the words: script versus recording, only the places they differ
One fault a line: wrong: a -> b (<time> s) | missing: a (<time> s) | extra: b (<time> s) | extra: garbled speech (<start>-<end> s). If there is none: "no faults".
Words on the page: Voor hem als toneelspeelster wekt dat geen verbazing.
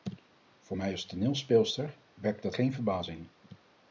wrong: hem -> mij (0.7 s)